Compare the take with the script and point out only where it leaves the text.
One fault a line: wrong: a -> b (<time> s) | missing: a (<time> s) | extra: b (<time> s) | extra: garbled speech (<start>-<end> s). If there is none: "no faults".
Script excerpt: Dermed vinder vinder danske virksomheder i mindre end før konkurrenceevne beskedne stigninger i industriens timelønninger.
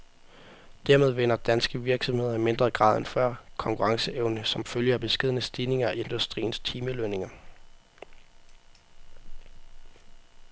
missing: vinder (1.4 s)
extra: grad (2.7 s)
extra: som følge af (4.5 s)